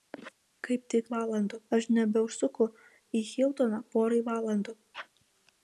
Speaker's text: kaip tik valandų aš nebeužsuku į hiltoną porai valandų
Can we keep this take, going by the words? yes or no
yes